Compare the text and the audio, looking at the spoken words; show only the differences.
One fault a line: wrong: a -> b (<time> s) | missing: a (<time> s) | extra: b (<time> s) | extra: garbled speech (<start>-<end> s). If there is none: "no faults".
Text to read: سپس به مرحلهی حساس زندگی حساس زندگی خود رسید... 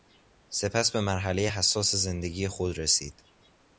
missing: حساس زندگی (2.5 s)